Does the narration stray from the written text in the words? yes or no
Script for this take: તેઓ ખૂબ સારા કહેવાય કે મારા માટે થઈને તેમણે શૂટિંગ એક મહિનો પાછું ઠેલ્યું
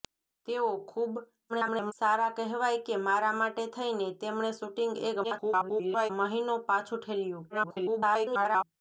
yes